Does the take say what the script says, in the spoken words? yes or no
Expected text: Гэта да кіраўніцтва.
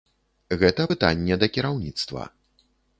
no